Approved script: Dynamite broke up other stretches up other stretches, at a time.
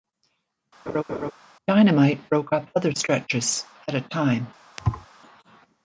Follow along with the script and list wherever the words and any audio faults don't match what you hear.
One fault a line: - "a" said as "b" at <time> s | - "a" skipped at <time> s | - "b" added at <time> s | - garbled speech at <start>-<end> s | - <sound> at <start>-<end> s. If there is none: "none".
- laugh at 0.9-1.3 s
- "up other stretches" skipped at 3.6 s
- thud at 4.8-5.1 s